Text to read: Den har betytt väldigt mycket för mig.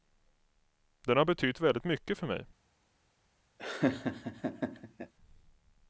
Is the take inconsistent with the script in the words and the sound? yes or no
yes